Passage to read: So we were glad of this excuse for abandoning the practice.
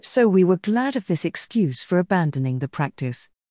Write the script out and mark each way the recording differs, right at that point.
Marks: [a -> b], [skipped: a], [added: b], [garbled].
So we were glad of this excuse for abandoning the practice.